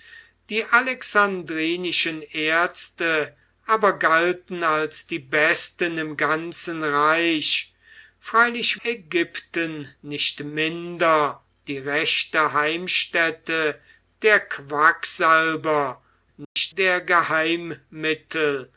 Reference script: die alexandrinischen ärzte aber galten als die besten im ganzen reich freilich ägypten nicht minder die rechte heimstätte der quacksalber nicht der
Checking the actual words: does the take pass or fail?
pass